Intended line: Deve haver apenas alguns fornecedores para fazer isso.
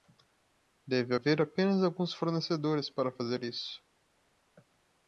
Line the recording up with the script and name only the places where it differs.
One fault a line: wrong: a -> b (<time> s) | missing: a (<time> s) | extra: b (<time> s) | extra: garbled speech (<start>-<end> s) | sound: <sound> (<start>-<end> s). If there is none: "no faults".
no faults